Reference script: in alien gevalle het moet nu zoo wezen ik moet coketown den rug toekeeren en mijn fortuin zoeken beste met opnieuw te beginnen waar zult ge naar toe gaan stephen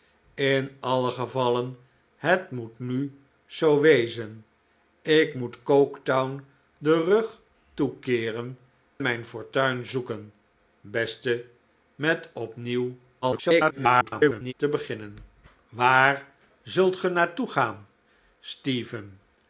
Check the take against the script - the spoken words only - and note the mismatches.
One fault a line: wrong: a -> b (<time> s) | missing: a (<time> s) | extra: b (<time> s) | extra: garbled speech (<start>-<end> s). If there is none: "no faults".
missing: en (8.6 s)
extra: garbled speech (13.2-14.5 s)